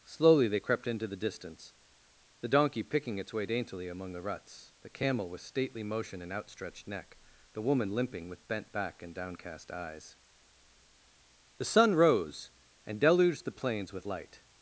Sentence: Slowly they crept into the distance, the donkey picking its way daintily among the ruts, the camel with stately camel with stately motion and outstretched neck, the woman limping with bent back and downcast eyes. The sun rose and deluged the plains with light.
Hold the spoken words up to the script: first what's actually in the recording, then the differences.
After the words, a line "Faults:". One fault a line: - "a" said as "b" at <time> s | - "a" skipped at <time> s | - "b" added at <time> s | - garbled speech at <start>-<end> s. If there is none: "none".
Slowly they crept into the distance, the donkey picking its way daintily among the ruts, the camel with stately motion and outstretched neck, the woman limping with bent back and downcast eyes. The sun rose and deluged the plains with light.
Faults:
- "camel with stately" skipped at 5.8 s